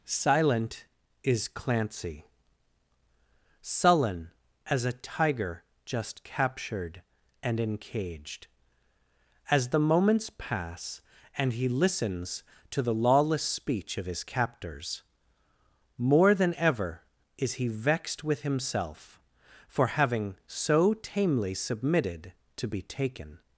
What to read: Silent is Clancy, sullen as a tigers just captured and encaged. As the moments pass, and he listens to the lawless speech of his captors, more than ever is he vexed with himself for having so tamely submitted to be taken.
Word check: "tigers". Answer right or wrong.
wrong